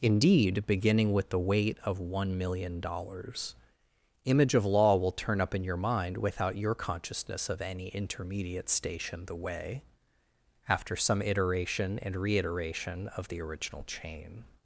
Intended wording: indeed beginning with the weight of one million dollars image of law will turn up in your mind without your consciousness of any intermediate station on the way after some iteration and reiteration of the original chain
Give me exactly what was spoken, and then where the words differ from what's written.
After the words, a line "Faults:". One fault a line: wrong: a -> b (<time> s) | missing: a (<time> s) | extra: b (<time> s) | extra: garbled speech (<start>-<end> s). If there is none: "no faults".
indeed beginning with the weight of one million dollars image of law will turn up in your mind without your consciousness of any intermediate station the way after some iteration and reiteration of the original chain
Faults:
missing: on (9.2 s)